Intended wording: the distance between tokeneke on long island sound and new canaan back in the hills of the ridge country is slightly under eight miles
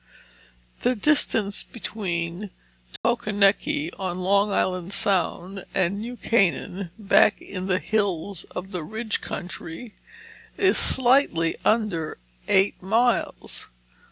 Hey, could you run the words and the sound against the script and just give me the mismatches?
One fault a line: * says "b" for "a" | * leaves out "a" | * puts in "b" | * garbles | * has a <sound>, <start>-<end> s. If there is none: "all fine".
* has a dropout, 3.0-3.0 s